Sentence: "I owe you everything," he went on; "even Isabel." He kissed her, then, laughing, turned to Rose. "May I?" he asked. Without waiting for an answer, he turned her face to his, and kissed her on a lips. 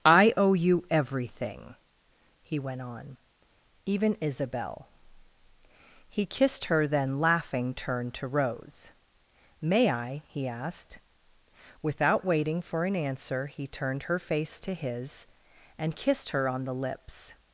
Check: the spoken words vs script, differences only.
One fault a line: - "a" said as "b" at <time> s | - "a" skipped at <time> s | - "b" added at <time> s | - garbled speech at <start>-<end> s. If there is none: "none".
- "a" said as "the" at 16.6 s